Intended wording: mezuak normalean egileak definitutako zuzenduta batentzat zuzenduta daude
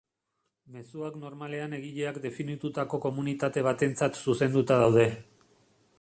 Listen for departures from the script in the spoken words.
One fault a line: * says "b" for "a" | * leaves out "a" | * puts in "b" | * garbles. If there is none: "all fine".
* says "komunitate" for "zuzenduta"